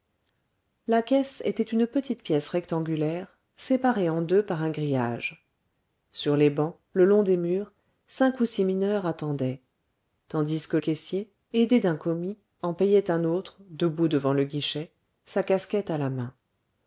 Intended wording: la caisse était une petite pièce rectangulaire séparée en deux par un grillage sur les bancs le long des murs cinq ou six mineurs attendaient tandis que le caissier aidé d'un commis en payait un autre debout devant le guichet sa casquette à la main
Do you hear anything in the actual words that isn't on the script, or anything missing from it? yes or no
yes